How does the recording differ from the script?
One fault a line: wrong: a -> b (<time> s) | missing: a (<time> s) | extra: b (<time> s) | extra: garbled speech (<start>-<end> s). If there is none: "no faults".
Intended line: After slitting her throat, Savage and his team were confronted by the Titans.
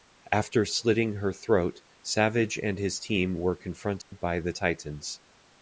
no faults